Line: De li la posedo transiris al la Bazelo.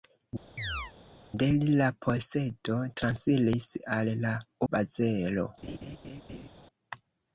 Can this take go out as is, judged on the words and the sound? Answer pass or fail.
fail